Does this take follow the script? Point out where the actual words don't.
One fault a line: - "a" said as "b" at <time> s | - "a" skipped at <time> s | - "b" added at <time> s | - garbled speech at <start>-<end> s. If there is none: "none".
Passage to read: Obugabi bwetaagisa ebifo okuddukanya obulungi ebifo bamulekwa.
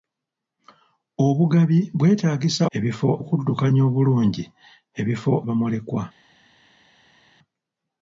none